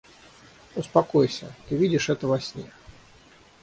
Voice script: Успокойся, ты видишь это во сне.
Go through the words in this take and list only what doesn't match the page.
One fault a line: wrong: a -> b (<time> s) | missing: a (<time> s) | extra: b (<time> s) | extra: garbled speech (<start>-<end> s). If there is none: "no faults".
no faults